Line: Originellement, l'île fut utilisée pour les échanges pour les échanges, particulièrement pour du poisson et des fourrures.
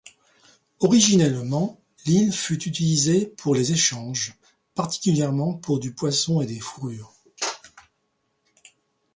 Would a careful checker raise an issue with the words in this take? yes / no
yes